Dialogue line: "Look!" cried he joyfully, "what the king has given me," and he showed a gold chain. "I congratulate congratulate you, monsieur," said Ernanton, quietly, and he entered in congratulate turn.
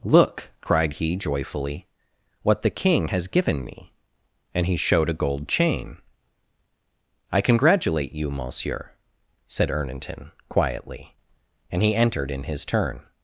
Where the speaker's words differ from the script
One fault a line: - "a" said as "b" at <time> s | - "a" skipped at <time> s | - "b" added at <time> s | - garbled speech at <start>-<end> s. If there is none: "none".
- "congratulate" skipped at 8.1 s
- "congratulate" said as "his" at 12.4 s